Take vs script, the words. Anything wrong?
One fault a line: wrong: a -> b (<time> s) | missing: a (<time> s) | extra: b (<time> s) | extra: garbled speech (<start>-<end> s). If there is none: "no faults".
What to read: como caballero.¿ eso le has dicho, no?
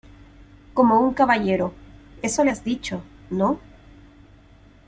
extra: un (1.0 s)